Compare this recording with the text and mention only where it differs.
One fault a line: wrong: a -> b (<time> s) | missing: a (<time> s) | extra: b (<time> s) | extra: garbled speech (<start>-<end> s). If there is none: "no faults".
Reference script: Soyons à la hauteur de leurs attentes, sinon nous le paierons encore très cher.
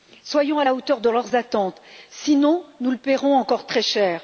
no faults